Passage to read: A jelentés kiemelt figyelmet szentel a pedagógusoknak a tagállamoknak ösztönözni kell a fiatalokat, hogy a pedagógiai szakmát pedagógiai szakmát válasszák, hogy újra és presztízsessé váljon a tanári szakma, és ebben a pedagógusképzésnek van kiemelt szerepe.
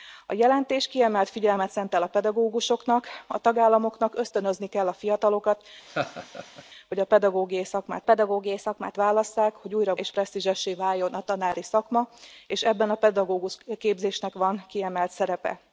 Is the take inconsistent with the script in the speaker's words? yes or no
no